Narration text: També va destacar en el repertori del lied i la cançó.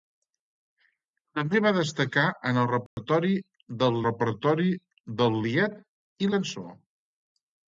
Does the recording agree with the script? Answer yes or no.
no